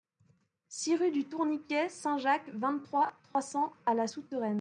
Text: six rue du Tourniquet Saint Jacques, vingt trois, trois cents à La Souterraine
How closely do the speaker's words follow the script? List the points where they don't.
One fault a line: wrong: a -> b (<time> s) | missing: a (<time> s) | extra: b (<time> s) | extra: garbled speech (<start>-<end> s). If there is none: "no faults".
no faults